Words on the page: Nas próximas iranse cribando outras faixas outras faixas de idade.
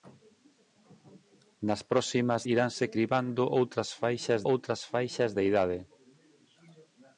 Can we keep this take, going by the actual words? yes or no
yes